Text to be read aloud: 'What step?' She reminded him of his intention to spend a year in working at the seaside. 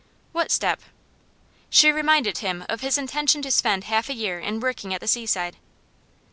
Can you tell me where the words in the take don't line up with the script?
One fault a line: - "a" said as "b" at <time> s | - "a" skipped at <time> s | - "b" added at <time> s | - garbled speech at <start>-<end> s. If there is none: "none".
- "half" added at 3.8 s